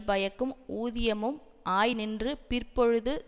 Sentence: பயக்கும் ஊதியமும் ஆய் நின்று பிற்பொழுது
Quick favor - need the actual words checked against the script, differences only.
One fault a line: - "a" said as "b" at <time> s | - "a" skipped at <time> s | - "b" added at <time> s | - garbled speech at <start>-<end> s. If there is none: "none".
none